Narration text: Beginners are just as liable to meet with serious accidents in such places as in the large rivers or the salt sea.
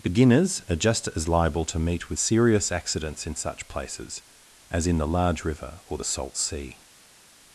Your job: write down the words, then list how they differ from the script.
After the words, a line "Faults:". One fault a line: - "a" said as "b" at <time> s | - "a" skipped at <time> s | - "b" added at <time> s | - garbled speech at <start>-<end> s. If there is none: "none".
Beginners are just as liable to meet with serious accidents in such places as in the large river or the salt sea.
Faults:
- "rivers" said as "river" at 5.4 s